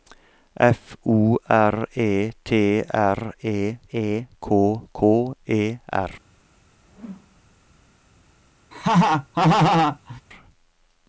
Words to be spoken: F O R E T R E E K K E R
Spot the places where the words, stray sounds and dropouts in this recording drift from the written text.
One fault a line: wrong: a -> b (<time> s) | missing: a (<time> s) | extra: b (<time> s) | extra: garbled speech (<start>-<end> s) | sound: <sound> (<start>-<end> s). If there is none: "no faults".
sound: whoosh (6.9-7.4 s)
sound: laugh (8.7-10.2 s)